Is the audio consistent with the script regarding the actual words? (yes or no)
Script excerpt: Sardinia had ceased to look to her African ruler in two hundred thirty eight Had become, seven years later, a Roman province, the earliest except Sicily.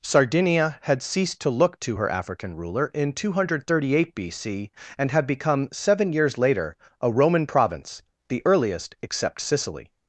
no